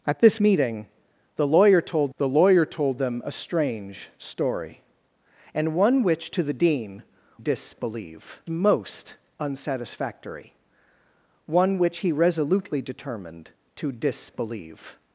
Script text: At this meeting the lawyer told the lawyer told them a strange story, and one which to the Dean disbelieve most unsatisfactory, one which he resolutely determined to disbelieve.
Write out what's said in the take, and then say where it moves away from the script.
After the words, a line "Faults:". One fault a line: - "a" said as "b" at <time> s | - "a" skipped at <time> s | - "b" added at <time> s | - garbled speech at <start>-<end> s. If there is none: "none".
At this meeting the lawyer told the lawyer told them a strange story, and one which to the Dean disbelieve most unsatisfactory, one which he resolutely determined to disbelieve.
Faults:
none